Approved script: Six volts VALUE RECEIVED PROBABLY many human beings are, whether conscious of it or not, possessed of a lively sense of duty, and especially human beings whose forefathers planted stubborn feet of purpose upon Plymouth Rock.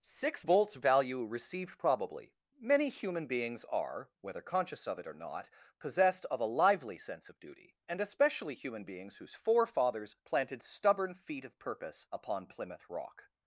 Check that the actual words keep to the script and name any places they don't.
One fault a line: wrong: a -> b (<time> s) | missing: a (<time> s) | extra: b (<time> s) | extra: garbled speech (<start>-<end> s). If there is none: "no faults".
no faults